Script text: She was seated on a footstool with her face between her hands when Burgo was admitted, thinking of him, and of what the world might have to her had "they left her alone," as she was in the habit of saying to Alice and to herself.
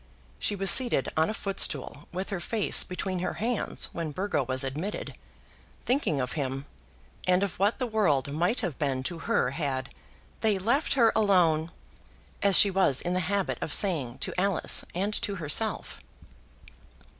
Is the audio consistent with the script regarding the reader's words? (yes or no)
no